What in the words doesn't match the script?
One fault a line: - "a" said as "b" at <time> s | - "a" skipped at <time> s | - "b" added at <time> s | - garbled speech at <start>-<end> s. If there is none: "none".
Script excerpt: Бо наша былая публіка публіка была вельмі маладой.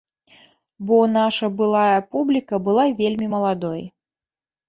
- "публіка" skipped at 2.5 s